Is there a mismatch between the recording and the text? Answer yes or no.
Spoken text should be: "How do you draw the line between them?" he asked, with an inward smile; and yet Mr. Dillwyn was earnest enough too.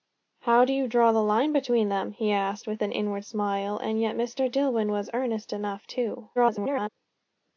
yes